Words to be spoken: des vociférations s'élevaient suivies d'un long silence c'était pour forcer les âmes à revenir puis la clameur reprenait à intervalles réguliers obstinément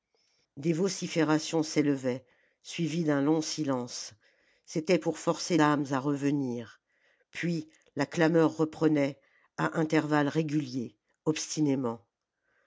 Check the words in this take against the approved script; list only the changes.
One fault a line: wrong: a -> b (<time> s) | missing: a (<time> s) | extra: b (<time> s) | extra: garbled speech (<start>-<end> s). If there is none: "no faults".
missing: les (5.6 s)